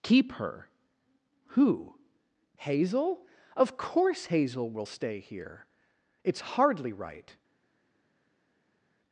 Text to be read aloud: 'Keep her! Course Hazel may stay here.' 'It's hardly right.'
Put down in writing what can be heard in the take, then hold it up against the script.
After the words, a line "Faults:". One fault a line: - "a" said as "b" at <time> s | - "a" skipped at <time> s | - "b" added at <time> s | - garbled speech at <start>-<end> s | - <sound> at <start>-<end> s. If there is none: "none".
'Keep her! Who? Hazel? Of course Hazel will stay here.' 'It's hardly right.'
Faults:
- "Who Hazel Of" added at 1.5 s
- "may" said as "will" at 4.7 s